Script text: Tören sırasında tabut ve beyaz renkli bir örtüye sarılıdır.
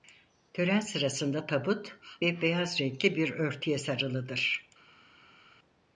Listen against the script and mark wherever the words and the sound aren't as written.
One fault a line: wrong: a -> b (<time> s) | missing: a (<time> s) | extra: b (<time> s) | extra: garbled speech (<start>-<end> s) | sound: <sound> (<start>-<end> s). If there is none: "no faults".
no faults